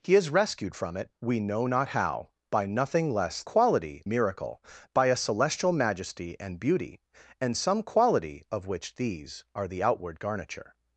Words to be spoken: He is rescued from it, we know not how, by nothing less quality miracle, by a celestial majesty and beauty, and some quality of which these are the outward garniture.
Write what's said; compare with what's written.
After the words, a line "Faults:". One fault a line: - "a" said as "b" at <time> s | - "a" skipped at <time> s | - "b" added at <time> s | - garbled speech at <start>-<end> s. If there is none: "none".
He is rescued from it, we know not how, by nothing less quality miracle, by a celestial majesty and beauty, and some quality of which these are the outward garniture.
Faults:
none